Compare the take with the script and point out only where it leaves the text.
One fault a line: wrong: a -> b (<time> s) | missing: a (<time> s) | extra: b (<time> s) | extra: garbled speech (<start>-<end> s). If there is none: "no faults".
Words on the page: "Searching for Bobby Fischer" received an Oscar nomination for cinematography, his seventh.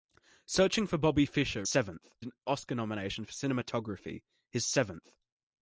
wrong: received -> seventh (1.6 s)